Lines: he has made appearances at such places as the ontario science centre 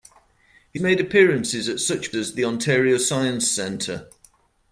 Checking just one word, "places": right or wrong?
wrong